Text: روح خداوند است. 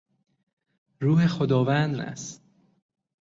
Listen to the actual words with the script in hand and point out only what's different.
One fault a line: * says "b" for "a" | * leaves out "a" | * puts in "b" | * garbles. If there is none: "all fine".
all fine